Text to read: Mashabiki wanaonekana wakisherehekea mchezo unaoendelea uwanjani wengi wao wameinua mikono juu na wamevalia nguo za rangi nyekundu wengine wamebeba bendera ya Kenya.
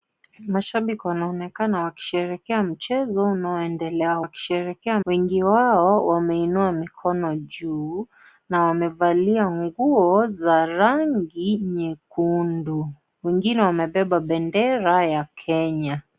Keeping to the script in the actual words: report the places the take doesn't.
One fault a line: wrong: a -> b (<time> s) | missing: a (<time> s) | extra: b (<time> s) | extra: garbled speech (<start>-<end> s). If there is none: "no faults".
wrong: uwanjani -> wakisherehekea (4.2 s)